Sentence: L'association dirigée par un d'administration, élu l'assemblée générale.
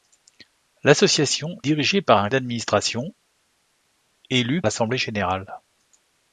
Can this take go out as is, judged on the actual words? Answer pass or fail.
pass